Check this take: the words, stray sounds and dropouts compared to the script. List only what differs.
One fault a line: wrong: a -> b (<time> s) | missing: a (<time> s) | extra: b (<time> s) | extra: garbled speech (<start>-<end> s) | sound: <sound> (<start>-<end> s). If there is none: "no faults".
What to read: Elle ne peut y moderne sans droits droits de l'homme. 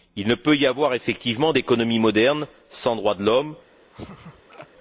wrong: Elle -> Il (0.1 s)
extra: avoir effectivement d'économie (0.7 s)
missing: droits (3.2 s)
sound: laugh (3.9-4.7 s)